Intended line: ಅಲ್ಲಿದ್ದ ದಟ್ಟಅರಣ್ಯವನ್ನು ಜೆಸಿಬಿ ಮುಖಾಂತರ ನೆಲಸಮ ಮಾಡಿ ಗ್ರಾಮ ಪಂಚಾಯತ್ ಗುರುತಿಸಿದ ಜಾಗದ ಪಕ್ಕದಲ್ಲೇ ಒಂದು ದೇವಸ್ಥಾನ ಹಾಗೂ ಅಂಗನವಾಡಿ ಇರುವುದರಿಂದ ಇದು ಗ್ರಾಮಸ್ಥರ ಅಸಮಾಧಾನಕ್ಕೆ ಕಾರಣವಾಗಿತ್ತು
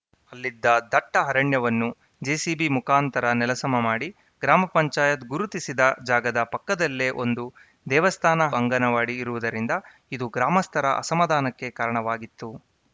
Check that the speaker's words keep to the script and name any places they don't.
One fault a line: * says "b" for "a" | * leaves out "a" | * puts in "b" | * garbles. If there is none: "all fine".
* leaves out "ಹಾಗೂ"